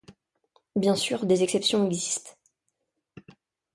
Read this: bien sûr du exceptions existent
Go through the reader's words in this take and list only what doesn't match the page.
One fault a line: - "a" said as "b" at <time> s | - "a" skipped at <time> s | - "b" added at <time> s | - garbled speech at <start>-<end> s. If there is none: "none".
- "du" said as "des" at 1.3 s